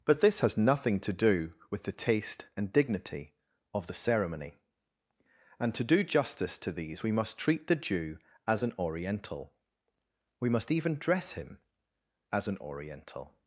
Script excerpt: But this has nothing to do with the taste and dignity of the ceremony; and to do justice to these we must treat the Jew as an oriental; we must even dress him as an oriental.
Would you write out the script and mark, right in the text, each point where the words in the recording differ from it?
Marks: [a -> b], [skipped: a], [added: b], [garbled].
But this has nothing to do with the taste and dignity of the ceremony; and to do justice to these we must treat the Jew as an oriental; we must even dress him as an oriental.